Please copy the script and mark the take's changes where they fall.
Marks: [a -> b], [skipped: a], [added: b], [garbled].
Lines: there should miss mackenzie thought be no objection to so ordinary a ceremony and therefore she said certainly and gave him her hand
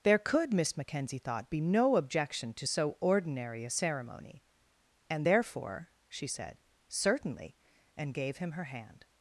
there [should -> could] miss mackenzie thought be no objection to so ordinary a ceremony and therefore she said certainly and gave him her hand